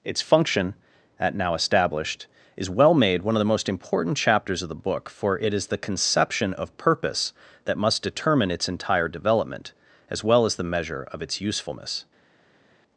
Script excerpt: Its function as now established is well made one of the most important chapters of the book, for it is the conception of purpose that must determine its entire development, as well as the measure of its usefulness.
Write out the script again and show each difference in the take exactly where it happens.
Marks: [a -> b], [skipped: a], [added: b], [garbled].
Its function [as -> at] now established is well made one of the most important chapters of the book, for it is the conception of purpose that must determine its entire development, as well as the measure of its usefulness.